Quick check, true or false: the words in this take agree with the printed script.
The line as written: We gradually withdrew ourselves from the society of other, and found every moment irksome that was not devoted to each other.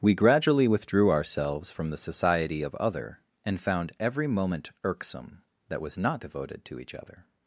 true